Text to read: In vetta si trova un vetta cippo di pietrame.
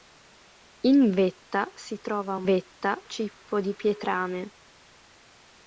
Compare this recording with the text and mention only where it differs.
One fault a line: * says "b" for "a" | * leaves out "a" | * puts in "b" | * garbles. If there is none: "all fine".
all fine